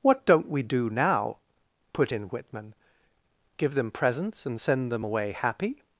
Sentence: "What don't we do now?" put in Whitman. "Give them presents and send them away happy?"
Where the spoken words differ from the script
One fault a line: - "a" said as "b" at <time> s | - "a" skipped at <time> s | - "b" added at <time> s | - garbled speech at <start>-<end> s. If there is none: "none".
none